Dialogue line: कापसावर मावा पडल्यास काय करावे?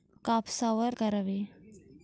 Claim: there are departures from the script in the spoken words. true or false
true